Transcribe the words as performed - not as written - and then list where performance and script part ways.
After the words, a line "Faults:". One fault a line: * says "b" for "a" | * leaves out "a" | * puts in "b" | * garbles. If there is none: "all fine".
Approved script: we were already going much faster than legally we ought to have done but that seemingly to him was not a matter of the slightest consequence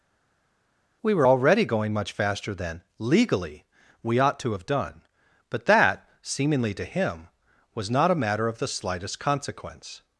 we were already going much faster than legally we ought to have done but that seemingly to him was not a matter of the slightest consequence
Faults:
all fine